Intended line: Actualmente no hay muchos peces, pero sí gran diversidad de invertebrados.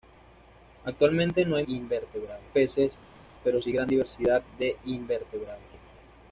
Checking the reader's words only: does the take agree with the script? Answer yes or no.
no